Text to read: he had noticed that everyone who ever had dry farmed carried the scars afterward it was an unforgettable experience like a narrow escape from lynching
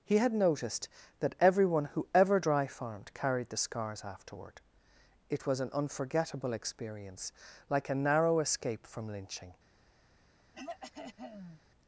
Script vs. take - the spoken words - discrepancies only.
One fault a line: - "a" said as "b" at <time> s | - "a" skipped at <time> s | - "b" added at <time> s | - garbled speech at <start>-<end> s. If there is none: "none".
- "had" skipped at 2.4 s